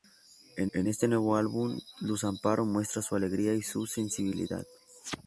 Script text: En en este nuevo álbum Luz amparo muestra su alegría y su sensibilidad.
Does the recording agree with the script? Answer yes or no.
yes